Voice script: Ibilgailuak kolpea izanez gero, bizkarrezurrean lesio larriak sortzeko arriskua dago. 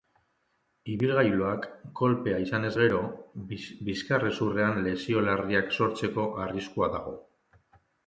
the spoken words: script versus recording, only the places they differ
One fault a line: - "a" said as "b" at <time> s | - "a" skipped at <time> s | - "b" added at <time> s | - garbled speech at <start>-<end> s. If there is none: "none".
none